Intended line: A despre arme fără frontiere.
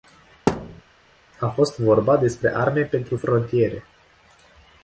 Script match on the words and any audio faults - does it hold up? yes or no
no